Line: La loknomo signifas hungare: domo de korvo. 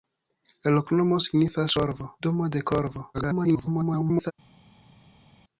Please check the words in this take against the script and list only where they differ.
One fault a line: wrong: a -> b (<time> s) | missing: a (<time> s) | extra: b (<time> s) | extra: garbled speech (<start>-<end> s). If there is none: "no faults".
wrong: hungare -> korvo (1.8 s)
extra: garbled speech (3.1-4.3 s)